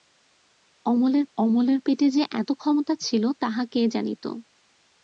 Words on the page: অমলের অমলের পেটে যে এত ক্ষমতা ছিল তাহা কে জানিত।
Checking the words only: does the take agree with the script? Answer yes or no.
yes